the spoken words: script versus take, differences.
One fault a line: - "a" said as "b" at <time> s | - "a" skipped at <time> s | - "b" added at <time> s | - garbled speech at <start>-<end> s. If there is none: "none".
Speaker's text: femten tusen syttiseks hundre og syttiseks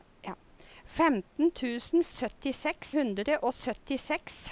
none